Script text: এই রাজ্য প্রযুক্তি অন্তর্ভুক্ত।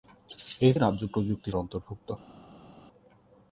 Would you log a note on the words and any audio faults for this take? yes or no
no